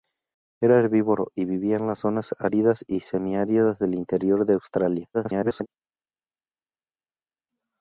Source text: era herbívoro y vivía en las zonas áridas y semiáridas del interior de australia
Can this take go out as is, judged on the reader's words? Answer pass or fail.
fail